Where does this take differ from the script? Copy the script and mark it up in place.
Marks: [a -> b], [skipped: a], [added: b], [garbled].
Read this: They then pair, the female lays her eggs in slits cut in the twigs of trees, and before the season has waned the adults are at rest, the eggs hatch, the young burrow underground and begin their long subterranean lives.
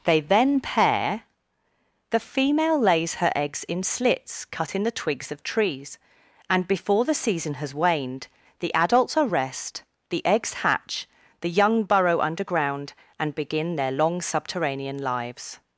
They then pair, the female lays her eggs in slits cut in the twigs of trees, and before the season has waned the adults are [skipped: at] rest, the eggs hatch, the young burrow underground and begin their long subterranean lives.